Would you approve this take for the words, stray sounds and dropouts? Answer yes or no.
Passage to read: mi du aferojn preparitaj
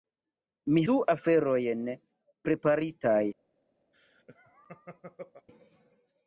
no